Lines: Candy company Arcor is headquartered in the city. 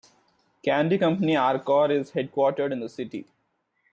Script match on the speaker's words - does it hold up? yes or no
yes